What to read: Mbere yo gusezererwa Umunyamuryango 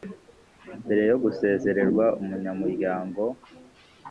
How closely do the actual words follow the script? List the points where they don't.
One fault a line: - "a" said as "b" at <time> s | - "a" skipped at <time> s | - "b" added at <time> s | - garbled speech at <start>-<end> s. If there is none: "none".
none